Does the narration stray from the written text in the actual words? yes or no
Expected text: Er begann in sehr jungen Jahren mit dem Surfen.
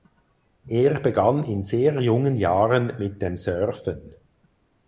no